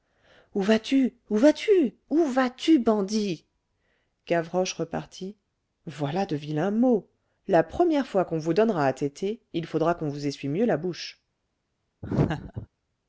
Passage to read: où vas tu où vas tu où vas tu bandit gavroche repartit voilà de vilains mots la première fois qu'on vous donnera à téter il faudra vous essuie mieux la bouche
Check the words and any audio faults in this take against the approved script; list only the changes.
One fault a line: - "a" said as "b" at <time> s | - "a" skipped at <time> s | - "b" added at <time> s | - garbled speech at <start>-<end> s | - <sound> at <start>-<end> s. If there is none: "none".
- "qu'on" added at 9.9 s
- laugh at 12.0-12.7 s